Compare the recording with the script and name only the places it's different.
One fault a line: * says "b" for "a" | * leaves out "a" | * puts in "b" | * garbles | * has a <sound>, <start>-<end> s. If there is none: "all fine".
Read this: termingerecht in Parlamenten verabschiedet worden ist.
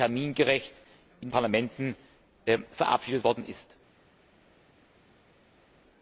all fine